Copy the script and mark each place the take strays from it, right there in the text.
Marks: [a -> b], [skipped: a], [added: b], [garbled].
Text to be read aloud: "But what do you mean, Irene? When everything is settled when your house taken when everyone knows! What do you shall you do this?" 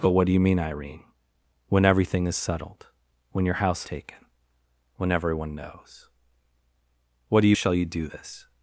"But what do you mean, Irene? When everything is settled when your house taken when everyone knows! What do you shall you do this?"